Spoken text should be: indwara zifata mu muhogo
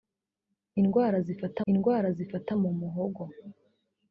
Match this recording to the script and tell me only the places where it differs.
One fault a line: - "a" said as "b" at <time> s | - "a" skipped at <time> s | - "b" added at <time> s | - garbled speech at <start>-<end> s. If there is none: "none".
- "indwara zifata" added at 1.7 s